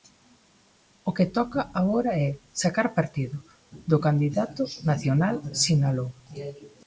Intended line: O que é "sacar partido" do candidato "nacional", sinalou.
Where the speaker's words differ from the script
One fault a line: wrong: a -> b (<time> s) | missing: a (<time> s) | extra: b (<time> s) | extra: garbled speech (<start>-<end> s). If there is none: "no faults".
extra: toca agora (1.4 s)